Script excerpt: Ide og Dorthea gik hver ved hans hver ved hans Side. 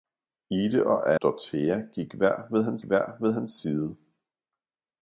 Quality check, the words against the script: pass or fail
pass